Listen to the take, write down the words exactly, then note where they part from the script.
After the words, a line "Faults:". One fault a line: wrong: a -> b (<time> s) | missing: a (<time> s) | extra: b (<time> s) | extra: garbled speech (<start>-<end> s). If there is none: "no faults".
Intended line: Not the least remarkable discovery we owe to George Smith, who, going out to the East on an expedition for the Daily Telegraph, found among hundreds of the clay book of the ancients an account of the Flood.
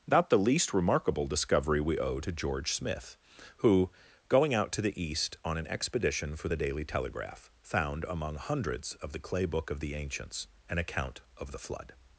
Not the least remarkable discovery we owe to George Smith, who, going out to the East on an expedition for the Daily Telegraph, found among hundreds of the clay book of the ancients an account of the Flood.
Faults:
no faults